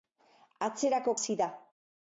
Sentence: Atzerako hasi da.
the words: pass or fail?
pass